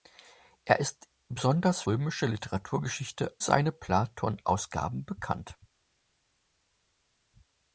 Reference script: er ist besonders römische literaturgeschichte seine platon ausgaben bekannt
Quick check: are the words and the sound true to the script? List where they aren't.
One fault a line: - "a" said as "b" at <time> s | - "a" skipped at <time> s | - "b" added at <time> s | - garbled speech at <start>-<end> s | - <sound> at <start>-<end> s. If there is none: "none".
none